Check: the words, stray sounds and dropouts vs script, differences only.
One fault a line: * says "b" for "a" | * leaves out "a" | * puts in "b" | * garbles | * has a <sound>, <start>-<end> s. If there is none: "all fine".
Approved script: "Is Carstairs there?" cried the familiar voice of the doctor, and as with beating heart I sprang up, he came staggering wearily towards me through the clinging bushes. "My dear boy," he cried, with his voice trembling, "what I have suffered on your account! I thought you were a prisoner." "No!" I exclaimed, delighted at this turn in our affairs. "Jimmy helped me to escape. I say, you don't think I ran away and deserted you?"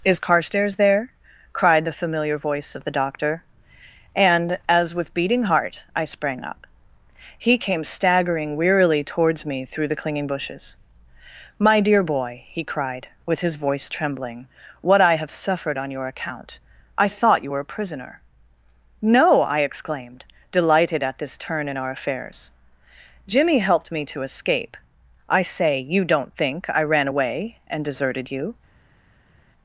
all fine